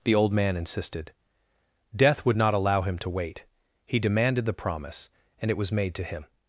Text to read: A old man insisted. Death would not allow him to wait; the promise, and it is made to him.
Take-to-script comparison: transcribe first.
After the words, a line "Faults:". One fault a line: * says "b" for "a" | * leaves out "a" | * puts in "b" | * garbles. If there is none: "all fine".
The old man insisted. Death would not allow him to wait; he demanded the promise, and it was made to him.
Faults:
* says "The" for "A"
* puts in "he demanded"
* says "was" for "is"